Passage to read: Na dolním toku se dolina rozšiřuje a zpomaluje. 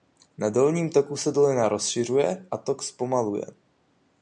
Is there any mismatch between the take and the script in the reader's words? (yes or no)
yes